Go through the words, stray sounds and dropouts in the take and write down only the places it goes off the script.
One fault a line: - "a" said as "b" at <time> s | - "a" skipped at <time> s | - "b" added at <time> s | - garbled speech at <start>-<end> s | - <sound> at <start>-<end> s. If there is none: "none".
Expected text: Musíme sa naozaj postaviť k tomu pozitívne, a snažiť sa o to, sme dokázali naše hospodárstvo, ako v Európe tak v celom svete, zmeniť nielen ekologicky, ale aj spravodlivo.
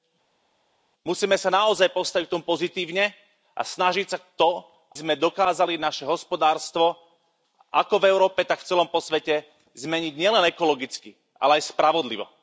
none